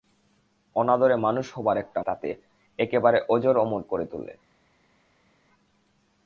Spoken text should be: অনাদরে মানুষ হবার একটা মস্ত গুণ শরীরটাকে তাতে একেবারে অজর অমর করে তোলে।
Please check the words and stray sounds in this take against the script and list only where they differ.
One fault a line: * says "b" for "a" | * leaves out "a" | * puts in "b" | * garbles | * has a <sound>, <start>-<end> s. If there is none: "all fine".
* leaves out "মস্ত গুণ শরীরটাকে"